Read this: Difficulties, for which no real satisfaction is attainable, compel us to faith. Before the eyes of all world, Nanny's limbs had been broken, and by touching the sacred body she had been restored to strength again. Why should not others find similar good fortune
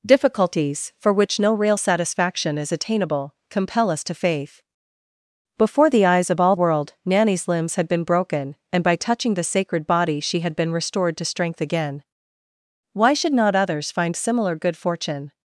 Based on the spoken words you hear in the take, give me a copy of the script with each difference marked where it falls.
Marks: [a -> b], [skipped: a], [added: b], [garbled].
Difficulties, for which no real satisfaction is attainable, compel us to faith. Before the eyes of all world, Nanny's limbs had been broken, and by touching the sacred body she had been restored to strength again. Why should not others find similar good fortune